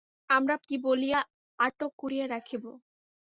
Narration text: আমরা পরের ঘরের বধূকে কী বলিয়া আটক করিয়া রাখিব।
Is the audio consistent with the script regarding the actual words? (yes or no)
no